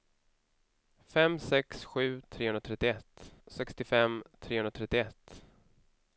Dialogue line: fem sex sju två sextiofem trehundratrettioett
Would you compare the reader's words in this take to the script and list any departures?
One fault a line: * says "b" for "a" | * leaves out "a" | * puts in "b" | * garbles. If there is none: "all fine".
* says "trehundratrettioett" for "två"